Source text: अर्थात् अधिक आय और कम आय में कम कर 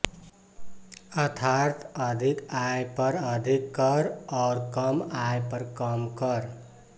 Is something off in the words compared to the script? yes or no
yes